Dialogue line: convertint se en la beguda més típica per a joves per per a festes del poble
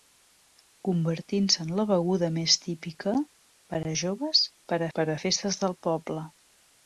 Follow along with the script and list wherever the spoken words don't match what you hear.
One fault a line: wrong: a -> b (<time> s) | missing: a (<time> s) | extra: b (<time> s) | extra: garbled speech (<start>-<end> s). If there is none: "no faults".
no faults